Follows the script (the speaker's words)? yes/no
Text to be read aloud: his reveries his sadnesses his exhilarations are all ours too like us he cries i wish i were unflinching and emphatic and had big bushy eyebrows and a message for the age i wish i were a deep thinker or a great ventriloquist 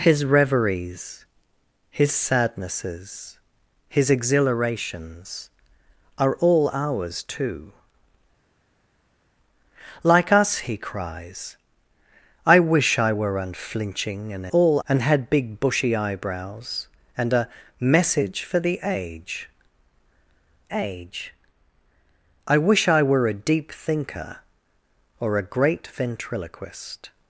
no